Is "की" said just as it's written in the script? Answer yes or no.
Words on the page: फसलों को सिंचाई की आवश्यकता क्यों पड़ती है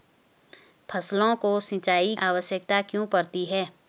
no